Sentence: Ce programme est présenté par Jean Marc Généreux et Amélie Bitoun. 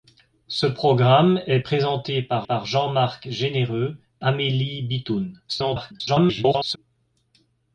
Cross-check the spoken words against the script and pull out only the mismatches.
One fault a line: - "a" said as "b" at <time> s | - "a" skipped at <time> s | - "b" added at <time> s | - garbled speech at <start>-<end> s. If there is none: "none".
- "par" added at 2.4 s
- "et" skipped at 4.0 s
- garbled speech at 5.5-6.8 s